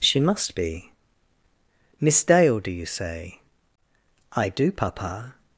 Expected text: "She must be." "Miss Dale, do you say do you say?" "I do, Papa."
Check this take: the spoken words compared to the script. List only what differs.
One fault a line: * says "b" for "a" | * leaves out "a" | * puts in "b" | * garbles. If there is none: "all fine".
* leaves out "do you say"